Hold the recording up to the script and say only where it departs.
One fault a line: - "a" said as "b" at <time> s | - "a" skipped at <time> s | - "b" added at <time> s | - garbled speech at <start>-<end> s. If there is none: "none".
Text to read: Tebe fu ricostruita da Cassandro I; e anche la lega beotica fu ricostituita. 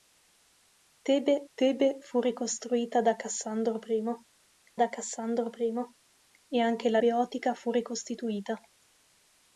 - "tebe" added at 1.6 s
- "da Cassandro I" added at 4.7 s
- "lega" skipped at 7.0 s